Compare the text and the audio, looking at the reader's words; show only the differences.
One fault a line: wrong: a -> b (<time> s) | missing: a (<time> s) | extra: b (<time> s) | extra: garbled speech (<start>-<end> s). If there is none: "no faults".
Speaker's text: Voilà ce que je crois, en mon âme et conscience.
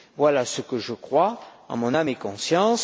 no faults